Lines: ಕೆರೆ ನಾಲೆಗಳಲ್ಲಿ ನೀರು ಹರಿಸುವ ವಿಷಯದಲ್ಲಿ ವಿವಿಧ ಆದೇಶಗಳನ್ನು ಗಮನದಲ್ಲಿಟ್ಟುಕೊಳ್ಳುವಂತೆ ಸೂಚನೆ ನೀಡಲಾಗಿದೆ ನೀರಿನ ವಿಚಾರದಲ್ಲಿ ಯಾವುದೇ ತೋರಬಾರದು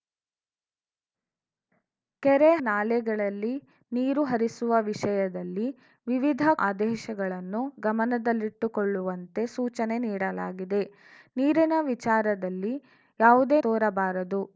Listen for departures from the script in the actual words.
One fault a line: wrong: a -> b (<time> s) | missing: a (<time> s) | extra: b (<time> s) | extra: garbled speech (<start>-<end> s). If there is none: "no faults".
no faults